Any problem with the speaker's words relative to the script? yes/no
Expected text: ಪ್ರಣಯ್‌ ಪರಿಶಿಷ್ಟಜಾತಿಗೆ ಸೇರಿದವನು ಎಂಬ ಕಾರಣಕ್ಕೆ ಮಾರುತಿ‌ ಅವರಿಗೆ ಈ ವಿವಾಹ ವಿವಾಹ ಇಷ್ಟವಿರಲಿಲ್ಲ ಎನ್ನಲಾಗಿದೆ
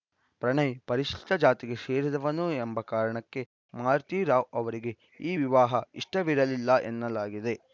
yes